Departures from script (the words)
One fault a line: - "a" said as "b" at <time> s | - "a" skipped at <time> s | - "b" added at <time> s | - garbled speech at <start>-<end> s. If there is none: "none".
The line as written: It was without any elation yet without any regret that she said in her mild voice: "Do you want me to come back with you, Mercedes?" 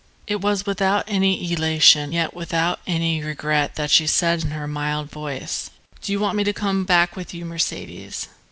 none